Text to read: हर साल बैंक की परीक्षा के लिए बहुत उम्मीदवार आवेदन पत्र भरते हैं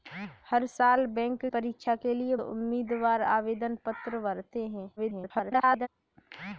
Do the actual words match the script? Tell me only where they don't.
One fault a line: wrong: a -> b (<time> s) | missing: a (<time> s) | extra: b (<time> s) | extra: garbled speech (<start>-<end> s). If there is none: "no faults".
missing: की (1.4 s)
missing: बहुत (2.3 s)
extra: garbled speech (5.0-5.9 s)